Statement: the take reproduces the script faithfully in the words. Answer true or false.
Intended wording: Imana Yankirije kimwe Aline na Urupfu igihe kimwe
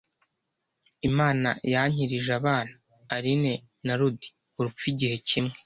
false